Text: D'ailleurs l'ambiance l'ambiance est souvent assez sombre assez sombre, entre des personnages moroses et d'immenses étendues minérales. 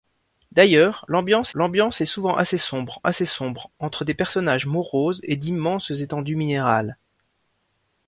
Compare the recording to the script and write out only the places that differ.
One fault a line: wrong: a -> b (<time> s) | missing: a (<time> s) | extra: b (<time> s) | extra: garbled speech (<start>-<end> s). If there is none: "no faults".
no faults